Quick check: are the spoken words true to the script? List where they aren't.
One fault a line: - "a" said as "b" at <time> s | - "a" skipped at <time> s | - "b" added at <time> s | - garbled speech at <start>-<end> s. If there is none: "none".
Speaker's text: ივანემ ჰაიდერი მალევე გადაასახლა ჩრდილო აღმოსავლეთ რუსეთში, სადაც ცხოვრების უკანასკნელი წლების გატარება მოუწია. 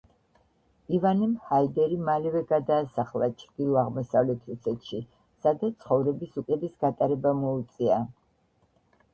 - "უკანასკნელი" skipped at 6.4 s